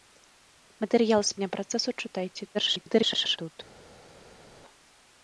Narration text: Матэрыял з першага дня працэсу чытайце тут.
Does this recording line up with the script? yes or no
no